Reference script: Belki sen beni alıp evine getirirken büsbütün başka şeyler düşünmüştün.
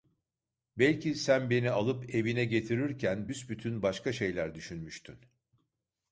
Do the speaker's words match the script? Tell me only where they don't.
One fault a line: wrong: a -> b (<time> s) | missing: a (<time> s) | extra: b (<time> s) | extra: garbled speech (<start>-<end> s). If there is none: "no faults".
no faults